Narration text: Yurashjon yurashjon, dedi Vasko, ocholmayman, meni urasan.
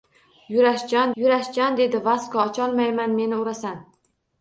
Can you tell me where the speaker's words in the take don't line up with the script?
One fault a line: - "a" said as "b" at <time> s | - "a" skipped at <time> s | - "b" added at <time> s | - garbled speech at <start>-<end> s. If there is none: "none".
none